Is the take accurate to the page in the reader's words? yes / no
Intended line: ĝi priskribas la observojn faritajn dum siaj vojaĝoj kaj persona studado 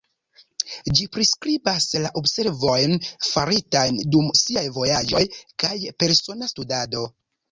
yes